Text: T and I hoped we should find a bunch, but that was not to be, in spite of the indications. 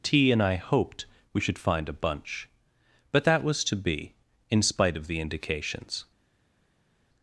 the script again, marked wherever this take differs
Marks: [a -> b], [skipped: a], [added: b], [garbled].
T and I hoped we should find a bunch, but that was [skipped: not] to be, in spite of the indications.